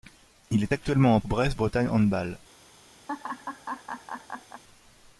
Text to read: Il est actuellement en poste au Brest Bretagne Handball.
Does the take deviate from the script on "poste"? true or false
true